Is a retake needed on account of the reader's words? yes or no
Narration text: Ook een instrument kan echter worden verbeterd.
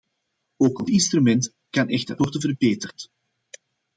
no